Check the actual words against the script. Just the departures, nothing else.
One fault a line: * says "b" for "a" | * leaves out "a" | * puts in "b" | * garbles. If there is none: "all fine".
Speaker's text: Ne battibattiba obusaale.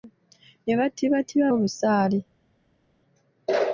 all fine